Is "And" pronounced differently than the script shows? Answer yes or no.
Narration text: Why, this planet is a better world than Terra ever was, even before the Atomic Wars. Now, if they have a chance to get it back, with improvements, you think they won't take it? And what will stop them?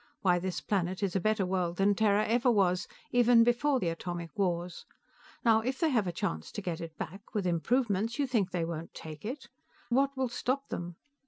yes